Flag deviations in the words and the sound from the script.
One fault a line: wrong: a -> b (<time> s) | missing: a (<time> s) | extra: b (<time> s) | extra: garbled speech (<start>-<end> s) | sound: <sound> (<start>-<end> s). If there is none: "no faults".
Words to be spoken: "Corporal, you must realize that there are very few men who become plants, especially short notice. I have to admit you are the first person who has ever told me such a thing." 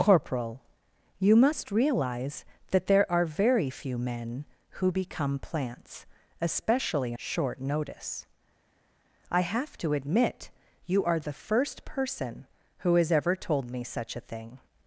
no faults